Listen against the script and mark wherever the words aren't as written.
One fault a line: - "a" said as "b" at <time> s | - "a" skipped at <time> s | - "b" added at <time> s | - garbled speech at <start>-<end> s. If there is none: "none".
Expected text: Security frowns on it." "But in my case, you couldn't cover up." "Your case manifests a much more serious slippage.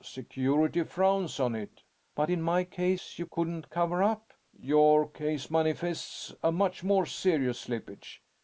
none